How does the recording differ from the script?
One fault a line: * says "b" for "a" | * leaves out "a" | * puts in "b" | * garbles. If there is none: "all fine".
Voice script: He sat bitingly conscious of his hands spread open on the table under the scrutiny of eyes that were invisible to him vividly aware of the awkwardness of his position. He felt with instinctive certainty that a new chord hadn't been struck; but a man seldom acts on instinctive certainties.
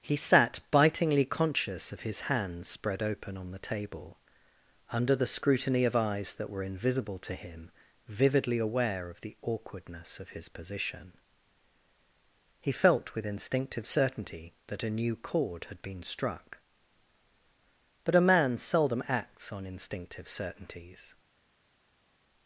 * says "had" for "hadn't"